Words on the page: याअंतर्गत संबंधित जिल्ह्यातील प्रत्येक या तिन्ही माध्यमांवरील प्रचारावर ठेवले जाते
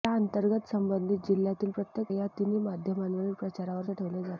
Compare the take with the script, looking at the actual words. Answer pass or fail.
pass